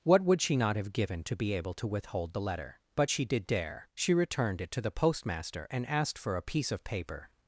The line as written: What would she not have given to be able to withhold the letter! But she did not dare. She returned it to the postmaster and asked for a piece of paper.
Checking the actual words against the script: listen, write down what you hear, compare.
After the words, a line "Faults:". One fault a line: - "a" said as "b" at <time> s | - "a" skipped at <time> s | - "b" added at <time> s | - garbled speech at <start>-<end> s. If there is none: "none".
What would she not have given to be able to withhold the letter! But she did dare. She returned it to the postmaster and asked for a piece of paper.
Faults:
- "not" skipped at 3.4 s